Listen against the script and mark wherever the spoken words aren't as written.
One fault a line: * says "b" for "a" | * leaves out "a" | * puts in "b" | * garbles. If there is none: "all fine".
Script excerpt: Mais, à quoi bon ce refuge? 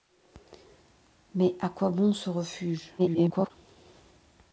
* garbles